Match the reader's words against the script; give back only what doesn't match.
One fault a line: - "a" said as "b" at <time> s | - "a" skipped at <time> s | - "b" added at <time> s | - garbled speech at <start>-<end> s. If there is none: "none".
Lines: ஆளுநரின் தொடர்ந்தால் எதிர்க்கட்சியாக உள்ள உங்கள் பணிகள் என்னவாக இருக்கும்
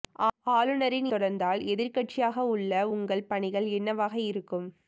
none